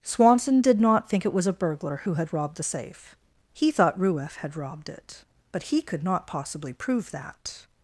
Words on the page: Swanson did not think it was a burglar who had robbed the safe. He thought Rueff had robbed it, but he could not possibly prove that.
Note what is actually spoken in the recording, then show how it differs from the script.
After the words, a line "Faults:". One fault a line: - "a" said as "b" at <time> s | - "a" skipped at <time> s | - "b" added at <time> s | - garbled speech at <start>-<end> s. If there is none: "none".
Swanson did not think it was a burglar who had robbed the safe. He thought Rueff had robbed it, but he could not possibly prove that.
Faults:
none